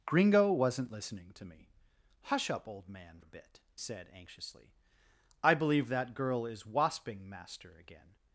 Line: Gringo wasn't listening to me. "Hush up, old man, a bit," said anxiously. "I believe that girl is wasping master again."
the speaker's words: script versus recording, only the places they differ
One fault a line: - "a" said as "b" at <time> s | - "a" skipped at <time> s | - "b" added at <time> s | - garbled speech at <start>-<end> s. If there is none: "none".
none